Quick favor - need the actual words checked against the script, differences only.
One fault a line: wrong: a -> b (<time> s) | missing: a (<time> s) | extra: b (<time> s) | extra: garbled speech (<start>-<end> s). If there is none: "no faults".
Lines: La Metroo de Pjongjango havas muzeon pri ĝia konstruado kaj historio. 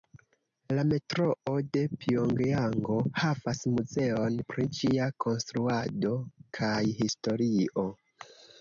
no faults